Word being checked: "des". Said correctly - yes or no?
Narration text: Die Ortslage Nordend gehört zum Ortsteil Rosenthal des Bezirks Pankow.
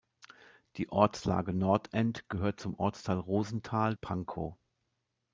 no